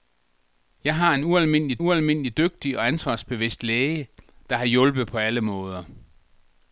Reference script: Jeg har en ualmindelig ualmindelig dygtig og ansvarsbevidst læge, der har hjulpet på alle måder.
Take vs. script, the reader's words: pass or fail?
pass